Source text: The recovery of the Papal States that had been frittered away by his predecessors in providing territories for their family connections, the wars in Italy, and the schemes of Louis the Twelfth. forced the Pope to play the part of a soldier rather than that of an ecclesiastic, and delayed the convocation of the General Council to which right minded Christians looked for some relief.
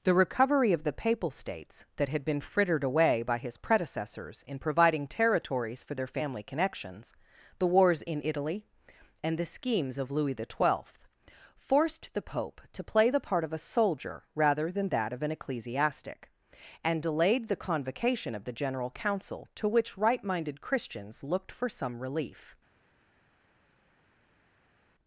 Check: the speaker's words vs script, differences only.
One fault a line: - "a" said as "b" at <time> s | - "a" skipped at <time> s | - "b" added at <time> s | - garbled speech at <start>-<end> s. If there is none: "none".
none